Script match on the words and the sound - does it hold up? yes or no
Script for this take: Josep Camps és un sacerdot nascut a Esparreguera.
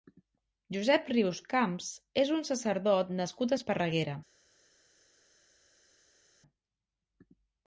no